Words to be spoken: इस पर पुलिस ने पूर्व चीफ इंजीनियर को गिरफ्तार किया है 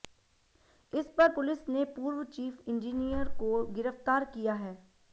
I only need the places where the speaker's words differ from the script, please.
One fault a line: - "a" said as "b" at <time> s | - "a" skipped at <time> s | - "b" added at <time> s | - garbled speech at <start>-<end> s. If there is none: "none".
none